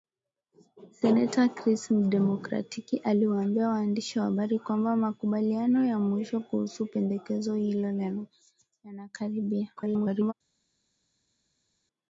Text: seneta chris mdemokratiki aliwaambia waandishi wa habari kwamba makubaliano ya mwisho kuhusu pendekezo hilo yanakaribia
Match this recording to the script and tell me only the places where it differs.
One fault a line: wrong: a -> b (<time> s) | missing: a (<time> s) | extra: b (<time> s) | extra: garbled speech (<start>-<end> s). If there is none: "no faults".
extra: garbled speech (9.8-10.3 s)